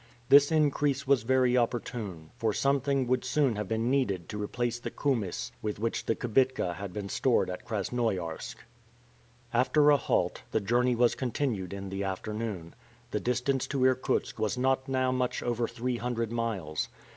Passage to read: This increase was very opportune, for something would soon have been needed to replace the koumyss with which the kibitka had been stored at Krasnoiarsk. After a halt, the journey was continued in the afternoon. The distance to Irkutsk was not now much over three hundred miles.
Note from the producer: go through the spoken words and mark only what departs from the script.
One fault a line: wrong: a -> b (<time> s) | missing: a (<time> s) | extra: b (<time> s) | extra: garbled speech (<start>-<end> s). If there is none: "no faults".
no faults